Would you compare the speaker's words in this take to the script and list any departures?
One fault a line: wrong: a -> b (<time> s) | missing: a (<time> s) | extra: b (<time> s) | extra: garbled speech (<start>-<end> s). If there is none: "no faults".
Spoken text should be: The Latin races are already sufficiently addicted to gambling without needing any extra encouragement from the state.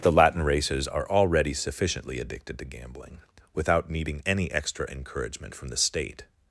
no faults